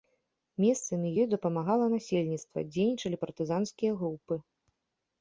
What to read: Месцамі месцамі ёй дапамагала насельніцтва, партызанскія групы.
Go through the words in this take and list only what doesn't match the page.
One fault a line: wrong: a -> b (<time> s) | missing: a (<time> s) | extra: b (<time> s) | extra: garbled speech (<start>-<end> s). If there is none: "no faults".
missing: месцамі (1.1 s)
extra: дзейнічалі (2.8 s)